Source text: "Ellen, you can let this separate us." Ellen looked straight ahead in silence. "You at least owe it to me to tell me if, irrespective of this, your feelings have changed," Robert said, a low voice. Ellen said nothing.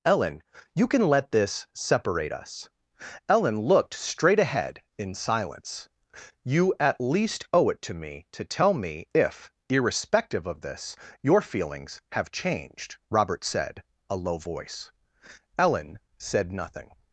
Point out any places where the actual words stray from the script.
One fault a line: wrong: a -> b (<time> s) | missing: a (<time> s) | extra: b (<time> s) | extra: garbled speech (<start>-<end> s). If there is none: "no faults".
no faults